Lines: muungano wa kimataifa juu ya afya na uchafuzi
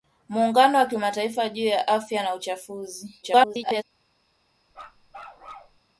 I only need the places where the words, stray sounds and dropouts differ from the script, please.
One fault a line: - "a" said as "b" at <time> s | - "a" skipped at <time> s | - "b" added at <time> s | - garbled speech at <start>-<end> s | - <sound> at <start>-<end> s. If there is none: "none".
- garbled speech at 3.2-3.8 s
- bark at 4.7-5.8 s